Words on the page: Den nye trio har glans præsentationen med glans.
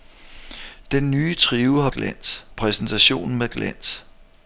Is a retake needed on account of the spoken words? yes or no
no